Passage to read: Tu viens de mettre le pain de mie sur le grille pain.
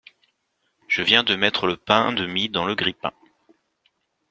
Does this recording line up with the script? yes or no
no